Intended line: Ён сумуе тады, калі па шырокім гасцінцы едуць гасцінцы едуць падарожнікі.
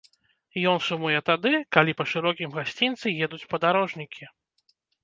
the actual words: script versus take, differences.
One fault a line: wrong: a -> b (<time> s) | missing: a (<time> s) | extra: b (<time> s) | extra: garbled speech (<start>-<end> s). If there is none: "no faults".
missing: гасцінцы едуць (3.4 s)